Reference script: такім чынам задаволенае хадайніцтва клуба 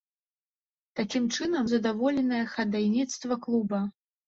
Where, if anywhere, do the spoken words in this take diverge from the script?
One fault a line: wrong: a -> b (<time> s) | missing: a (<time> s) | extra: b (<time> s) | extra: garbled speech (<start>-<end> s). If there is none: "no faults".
no faults